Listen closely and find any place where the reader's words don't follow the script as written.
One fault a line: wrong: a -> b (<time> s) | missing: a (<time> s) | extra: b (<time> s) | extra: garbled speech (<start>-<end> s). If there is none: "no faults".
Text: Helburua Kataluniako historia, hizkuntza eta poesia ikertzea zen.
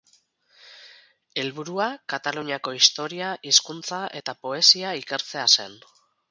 no faults